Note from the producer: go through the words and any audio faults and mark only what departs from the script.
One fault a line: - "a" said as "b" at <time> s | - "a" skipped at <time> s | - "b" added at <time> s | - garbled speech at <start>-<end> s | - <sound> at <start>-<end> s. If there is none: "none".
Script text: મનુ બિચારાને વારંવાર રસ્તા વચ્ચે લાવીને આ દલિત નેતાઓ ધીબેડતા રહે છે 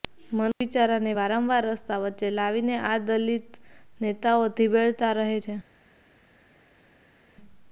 none